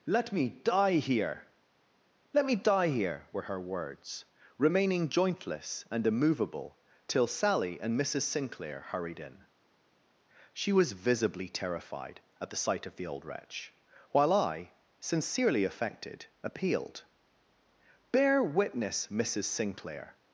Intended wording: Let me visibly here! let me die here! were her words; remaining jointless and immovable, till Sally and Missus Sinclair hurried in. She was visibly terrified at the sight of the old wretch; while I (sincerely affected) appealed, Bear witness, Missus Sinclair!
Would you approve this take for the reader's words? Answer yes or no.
no